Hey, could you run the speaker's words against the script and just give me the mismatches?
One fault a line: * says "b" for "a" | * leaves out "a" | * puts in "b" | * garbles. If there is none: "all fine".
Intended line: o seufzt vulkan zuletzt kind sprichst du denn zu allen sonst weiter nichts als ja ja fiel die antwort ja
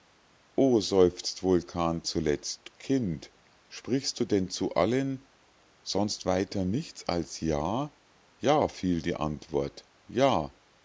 all fine